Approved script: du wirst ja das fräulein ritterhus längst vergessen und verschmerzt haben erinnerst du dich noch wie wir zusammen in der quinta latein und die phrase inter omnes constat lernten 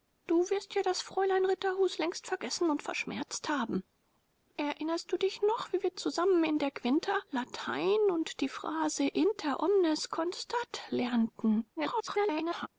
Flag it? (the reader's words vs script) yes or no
yes